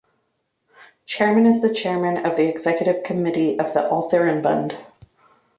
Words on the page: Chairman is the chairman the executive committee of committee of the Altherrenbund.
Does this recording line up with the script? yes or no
no